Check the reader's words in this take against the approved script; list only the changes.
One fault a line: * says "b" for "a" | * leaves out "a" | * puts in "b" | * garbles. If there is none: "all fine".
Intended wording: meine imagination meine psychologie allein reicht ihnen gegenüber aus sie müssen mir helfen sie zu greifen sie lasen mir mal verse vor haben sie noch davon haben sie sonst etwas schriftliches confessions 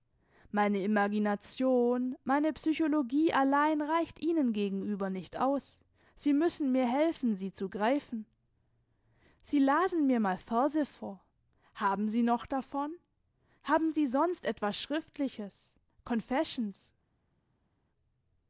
* puts in "nicht"